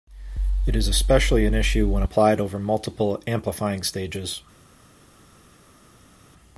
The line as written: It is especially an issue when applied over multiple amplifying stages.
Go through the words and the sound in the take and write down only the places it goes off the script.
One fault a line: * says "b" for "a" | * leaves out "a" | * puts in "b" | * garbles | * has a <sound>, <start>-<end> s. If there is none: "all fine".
all fine